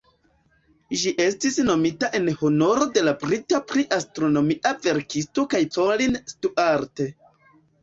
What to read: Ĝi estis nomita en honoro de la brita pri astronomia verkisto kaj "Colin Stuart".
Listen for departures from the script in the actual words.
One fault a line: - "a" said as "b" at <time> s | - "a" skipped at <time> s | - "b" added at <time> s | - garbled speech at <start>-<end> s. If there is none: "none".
none